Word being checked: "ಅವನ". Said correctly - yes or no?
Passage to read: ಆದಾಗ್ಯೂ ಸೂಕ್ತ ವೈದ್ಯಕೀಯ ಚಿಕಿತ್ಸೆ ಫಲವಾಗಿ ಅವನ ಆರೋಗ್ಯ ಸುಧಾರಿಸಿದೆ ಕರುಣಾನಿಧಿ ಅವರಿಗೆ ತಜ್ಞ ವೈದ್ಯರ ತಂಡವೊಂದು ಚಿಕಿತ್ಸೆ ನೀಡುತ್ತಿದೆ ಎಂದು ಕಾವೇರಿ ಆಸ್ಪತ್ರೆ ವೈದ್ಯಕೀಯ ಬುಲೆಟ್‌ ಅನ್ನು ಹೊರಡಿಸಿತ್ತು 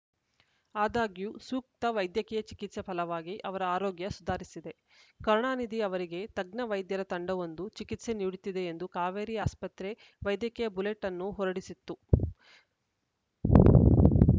no